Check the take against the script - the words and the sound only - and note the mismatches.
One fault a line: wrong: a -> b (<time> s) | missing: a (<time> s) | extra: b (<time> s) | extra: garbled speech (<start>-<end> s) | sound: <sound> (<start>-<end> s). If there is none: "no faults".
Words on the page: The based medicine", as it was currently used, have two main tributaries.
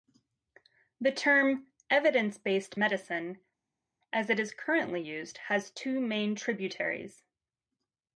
extra: term evidence (1.1 s)
wrong: was -> is (4.4 s)
wrong: have -> has (5.4 s)